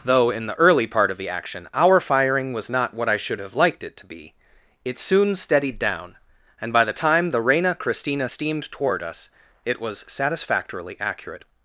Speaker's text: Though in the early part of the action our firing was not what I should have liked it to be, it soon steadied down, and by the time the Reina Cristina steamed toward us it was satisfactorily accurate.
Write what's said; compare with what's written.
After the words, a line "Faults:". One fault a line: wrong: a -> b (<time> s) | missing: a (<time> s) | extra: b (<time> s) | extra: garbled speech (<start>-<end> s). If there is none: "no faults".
Though in the early part of the action our firing was not what I should have liked it to be, it soon steadied down, and by the time the Reina Cristina steamed toward us it was satisfactorily accurate.
Faults:
no faults